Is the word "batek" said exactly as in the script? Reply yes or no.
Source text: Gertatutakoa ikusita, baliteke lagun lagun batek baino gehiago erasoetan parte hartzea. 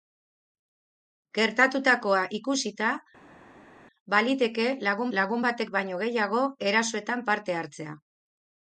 yes